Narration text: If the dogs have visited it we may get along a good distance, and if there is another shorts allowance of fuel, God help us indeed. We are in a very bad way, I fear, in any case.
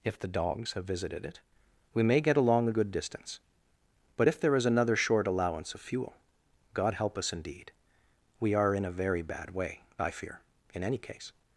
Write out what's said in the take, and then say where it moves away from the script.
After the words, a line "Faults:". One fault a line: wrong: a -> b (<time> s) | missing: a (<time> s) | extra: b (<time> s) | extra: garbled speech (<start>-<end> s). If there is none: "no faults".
If the dogs have visited it we may get along a good distance, but if there is another short allowance of fuel, God help us indeed. We are in a very bad way, I fear, in any case.
Faults:
wrong: and -> but (4.2 s)
wrong: shorts -> short (5.0 s)